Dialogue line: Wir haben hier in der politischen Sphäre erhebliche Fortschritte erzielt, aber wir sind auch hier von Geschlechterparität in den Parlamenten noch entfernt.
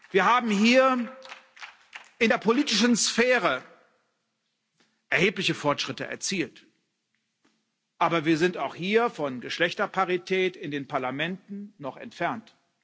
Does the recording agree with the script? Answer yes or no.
yes